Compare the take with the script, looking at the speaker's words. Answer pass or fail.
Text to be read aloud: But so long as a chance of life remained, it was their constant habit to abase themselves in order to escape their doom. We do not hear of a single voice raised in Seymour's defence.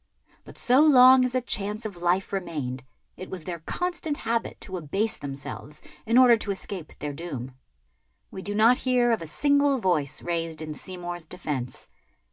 pass